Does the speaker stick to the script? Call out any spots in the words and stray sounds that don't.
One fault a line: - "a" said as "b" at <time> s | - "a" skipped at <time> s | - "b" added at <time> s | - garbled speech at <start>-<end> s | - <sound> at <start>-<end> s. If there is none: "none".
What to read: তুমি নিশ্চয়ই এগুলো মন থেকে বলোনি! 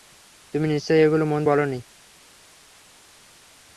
- "থেকে" skipped at 1.4 s